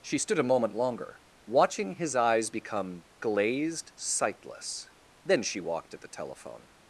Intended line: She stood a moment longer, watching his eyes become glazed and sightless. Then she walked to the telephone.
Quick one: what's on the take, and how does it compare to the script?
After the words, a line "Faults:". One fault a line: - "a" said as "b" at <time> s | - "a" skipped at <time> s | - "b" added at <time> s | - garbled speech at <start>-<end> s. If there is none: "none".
She stood a moment longer, watching his eyes become glazed sightless. Then she walked at the telephone.
Faults:
- "and" skipped at 3.9 s
- "to" said as "at" at 5.9 s